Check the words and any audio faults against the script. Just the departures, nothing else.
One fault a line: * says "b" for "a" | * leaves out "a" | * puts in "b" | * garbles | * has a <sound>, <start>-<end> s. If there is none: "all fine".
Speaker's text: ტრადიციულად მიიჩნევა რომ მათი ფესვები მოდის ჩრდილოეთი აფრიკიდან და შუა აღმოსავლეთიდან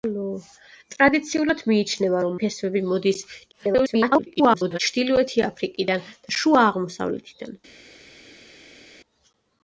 * leaves out "მათი"
* garbles